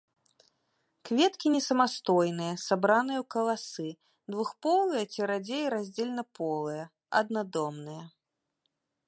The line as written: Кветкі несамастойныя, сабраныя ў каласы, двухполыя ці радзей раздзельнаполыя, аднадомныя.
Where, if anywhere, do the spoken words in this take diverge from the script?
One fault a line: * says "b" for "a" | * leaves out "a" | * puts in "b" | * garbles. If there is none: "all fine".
all fine